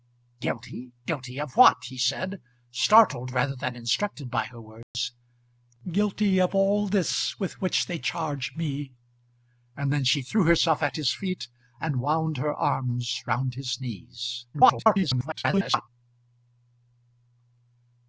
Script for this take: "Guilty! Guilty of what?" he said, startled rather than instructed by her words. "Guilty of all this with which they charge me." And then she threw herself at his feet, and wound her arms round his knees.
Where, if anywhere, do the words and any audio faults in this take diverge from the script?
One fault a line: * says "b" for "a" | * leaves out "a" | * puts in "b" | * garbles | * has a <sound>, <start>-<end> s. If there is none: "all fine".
* has a dropout, 4.8-4.9 s
* garbles